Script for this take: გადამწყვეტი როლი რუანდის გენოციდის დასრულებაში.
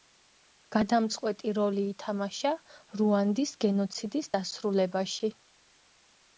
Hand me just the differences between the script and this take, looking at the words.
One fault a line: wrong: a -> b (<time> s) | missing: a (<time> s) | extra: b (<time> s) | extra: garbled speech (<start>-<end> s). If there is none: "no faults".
extra: ითამაშა (1.9 s)